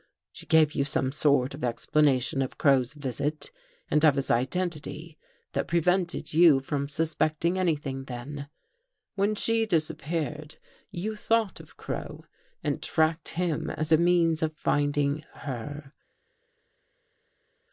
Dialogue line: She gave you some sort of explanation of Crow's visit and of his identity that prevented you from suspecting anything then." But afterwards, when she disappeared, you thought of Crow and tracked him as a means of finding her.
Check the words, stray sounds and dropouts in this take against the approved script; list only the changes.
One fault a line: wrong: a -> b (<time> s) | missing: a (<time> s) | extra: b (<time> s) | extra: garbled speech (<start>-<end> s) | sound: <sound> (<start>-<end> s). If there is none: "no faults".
missing: But afterwards (8.5 s)